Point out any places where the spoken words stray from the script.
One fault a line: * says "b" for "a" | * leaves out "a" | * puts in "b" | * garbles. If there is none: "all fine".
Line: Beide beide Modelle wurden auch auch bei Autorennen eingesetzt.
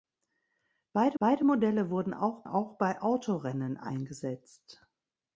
all fine